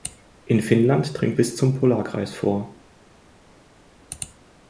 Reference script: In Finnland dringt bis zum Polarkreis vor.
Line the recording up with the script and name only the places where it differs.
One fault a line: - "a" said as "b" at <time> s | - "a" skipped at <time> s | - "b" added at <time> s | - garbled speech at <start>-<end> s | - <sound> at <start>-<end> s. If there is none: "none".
none